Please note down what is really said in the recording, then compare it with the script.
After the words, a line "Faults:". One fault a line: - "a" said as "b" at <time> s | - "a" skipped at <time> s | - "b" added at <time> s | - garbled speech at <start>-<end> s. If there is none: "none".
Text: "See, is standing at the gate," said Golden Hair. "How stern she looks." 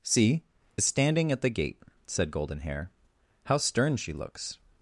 "See, is standing at the gate," said Golden Hair. "How stern she looks."
Faults:
none